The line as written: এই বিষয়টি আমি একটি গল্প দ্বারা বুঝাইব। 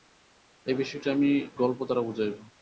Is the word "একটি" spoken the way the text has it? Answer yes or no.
no